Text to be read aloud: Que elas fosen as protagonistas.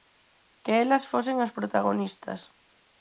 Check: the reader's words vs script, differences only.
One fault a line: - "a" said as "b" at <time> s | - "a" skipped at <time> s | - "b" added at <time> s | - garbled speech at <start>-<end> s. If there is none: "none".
none